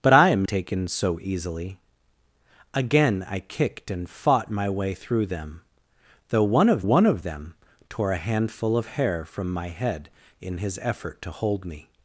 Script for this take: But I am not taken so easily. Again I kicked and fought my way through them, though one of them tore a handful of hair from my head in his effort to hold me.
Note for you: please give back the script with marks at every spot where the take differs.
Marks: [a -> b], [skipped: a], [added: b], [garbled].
But I am [skipped: not] taken so easily. Again I kicked and fought my way through them, though one of [added: one of] them tore a handful of hair from my head in his effort to hold me.